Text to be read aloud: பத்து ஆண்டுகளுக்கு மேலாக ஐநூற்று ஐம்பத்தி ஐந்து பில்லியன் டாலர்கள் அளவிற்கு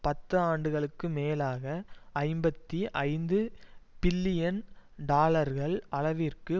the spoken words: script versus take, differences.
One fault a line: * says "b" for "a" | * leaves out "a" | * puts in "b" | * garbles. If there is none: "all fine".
* leaves out "ஐநூற்று"